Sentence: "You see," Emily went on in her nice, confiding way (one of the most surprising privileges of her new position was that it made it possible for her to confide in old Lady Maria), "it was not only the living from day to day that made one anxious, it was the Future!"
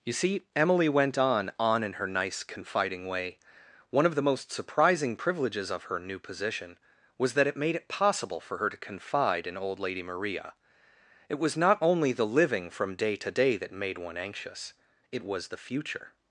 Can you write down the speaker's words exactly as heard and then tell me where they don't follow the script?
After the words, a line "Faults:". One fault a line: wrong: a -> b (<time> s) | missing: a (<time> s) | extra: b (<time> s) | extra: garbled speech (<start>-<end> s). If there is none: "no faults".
"You see," Emily went on on in her nice, confiding way (one of the most surprising privileges of her new position was that it made it possible for her to confide in old Lady Maria), "it was not only the living from day to day that made one anxious, it was the Future!"
Faults:
extra: on (1.6 s)